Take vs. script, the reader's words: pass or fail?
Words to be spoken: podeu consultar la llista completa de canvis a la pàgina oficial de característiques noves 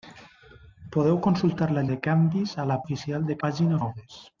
fail